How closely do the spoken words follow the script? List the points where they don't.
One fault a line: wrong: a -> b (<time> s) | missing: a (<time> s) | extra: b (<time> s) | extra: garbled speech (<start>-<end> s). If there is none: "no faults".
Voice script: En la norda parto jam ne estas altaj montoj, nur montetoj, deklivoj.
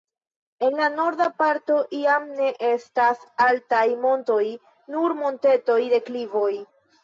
no faults